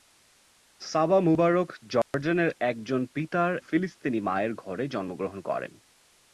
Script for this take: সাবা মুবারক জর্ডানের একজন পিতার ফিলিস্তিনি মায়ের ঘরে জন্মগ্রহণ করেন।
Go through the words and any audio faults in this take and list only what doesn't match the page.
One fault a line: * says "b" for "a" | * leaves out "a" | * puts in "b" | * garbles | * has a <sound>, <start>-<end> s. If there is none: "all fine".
* has a dropout, 2.0-2.1 s